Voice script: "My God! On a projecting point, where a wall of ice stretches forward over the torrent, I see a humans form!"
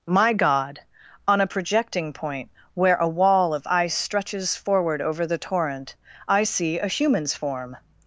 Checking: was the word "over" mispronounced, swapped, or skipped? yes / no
no